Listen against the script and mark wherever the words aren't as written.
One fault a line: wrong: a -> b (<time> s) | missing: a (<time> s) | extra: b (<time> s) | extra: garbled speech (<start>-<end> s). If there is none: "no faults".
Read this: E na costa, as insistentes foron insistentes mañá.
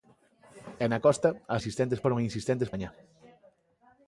no faults